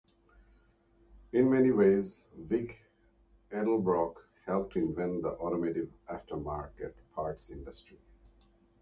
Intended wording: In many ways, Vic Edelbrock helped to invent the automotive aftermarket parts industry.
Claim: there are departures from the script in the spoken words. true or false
false